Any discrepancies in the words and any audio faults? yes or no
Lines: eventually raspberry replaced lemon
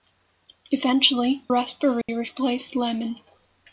yes